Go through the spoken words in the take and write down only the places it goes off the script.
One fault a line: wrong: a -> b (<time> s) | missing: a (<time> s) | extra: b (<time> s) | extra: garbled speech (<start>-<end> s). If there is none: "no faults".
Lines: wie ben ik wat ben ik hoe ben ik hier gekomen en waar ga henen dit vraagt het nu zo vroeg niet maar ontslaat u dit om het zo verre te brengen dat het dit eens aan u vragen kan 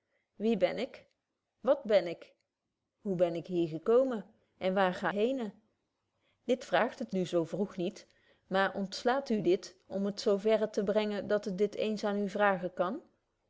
no faults